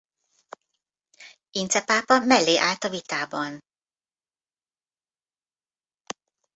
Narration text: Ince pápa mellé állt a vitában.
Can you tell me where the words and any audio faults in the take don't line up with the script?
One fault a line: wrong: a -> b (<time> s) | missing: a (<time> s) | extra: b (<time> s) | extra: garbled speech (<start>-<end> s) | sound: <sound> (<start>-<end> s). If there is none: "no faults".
no faults